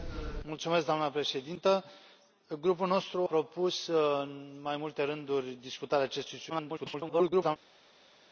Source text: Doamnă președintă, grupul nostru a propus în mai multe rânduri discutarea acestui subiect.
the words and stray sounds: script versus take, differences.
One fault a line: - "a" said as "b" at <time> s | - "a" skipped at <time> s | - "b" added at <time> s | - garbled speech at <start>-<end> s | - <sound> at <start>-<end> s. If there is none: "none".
- "a" skipped at 3.3 s
- garbled speech at 6.5-7.6 s